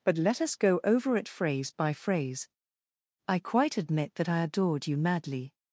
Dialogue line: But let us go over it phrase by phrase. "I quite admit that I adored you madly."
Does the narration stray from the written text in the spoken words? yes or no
no